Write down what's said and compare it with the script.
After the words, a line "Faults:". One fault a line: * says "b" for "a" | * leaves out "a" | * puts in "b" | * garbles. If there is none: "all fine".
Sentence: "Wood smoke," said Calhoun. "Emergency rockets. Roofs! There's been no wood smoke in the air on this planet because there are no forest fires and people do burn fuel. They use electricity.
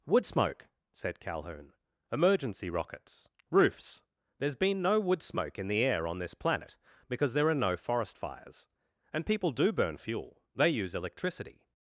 "Wood smoke," said Calhoun. "Emergency rockets. Roofs! There's been no wood smoke in the air on this planet because there are no forest fires and people do burn fuel. They use electricity.
Faults:
all fine